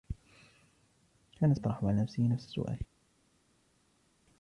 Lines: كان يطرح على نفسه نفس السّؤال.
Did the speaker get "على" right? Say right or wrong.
right